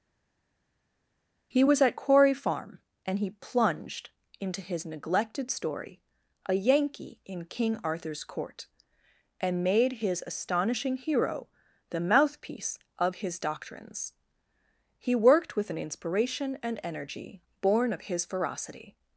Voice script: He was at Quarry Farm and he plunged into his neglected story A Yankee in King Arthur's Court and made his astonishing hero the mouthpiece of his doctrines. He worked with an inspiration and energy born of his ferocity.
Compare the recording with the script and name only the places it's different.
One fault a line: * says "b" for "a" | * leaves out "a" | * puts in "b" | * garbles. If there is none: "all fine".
all fine